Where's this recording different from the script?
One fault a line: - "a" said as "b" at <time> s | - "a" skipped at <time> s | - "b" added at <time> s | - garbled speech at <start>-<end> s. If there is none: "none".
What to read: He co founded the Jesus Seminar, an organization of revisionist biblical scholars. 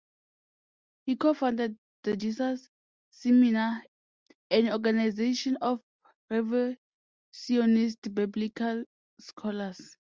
none